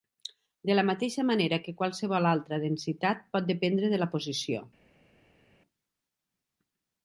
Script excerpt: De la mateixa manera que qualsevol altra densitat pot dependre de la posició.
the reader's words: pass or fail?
pass